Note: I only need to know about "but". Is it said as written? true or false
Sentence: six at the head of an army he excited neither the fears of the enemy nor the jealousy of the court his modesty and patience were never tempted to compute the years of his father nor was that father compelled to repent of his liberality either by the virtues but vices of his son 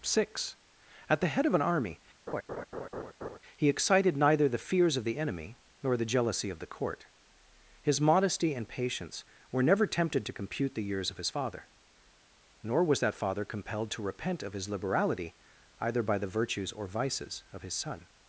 false